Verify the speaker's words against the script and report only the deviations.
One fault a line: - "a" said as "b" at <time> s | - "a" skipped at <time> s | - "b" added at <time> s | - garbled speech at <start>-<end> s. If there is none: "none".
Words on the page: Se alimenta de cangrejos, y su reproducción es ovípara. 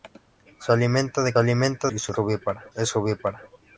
- "cangrejos" said as "alimenta" at 1.4 s
- "reproducción" said as "ovípara" at 2.2 s